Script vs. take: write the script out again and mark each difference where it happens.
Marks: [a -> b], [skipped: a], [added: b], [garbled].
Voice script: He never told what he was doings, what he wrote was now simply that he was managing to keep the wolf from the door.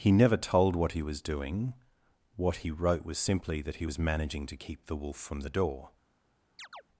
He never told what he was [doings, -> doing] what he wrote was [skipped: now] simply that he was managing to keep the wolf from the door.